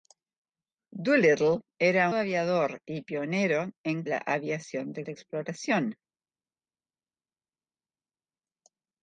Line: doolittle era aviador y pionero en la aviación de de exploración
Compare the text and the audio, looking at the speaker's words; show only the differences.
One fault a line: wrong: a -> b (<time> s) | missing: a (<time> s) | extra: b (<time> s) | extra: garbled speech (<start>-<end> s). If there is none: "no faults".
no faults